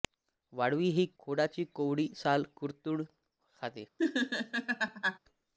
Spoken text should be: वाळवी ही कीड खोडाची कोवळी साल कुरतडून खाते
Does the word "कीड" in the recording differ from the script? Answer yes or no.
yes